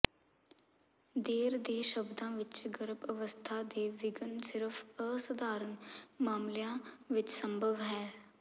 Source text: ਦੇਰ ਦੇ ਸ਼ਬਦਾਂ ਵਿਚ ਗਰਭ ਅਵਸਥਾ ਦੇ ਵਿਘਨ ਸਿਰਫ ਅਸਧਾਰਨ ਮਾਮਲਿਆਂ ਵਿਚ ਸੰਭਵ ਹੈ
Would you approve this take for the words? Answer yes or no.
yes